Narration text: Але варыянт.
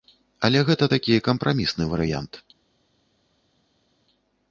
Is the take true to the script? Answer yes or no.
no